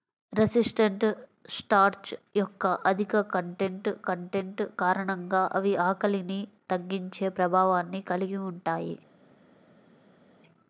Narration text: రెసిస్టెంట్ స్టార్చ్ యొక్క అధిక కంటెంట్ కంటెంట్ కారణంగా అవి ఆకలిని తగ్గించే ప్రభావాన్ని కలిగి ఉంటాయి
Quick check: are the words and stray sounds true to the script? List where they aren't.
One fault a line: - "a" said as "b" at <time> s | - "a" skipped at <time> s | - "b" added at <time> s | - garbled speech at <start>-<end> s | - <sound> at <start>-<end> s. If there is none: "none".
none